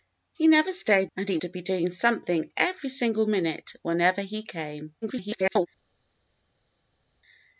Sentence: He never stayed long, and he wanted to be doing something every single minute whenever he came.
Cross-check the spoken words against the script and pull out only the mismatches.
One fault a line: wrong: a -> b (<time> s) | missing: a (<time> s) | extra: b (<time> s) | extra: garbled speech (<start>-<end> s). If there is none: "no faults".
missing: long (1.1 s)
missing: wanted (1.4 s)
extra: garbled speech (5.0-5.7 s)